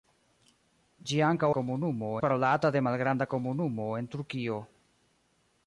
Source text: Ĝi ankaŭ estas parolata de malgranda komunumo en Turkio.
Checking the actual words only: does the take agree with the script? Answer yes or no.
no